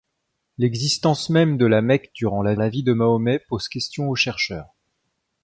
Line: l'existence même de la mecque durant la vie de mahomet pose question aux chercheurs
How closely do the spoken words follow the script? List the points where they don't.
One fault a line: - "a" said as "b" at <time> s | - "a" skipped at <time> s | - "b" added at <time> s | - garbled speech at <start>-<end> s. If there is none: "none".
- "la" added at 2.6 s